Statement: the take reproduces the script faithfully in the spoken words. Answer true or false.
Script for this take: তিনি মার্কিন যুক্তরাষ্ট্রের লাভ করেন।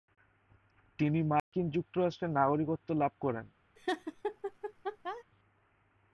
false